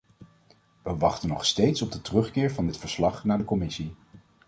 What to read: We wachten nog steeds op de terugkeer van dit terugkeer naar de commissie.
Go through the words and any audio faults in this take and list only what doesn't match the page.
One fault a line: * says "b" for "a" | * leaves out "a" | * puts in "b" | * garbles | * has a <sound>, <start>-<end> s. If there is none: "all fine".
* says "verslag" for "terugkeer"